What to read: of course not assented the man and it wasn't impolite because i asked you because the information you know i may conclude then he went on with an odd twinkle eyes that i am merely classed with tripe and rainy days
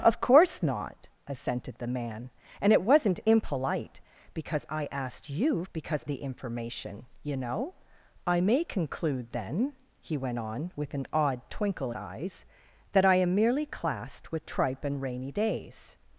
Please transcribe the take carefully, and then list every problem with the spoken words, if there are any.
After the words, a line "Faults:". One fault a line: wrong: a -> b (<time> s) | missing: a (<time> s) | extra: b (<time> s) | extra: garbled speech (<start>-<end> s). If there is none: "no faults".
of course not assented the man and it wasn't impolite because i asked you because the information you know i may conclude then he went on with an odd twinkle eyes that i am merely classed with tripe and rainy days
Faults:
no faults